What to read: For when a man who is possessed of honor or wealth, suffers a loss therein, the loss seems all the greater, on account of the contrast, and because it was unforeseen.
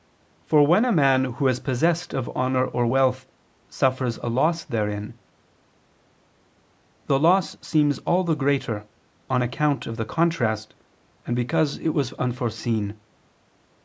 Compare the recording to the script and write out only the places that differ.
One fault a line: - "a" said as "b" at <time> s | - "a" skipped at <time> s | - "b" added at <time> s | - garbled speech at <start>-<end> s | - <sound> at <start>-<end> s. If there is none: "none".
none